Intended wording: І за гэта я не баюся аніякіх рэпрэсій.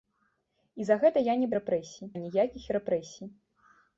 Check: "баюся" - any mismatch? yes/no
yes